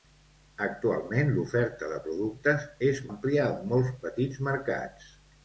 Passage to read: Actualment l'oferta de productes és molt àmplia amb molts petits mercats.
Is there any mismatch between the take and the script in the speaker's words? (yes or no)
yes